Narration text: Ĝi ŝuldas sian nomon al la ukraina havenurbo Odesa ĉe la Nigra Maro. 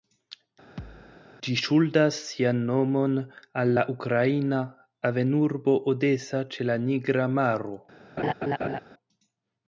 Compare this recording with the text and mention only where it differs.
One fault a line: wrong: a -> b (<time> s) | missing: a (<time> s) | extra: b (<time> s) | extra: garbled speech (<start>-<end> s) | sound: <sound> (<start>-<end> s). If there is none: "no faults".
sound: thud (0.8-1.2 s)
sound: laugh (8.2-8.8 s)